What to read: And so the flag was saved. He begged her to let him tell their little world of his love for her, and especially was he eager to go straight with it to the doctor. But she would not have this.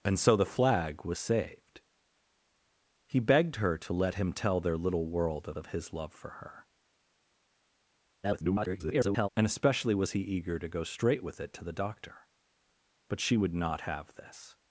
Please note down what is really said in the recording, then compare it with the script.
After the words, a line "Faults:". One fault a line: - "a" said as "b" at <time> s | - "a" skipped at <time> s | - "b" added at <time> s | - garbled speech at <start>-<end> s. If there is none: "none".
And so the flag was saved. He begged her to let him tell their little world of of his love for her, [garbled] and especially was he eager to go straight with it to the doctor. But she would not have this.
Faults:
- "of" added at 5.6 s
- garbled speech at 8.2-9.3 s